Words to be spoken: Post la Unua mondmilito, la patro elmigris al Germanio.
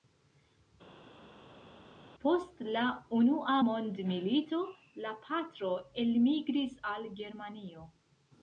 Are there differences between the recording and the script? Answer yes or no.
no